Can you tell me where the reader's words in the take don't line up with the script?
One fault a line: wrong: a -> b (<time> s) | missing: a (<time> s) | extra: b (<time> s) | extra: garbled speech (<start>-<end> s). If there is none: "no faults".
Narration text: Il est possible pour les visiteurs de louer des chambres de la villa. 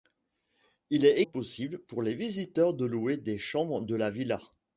no faults